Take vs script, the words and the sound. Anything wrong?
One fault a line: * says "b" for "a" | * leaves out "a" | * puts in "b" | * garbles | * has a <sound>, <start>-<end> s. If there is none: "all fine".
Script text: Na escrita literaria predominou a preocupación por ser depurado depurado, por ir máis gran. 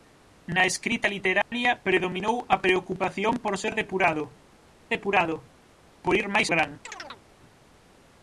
* has a dropout, 1.4-1.5 s
* has a chirp, 6.8-7.2 s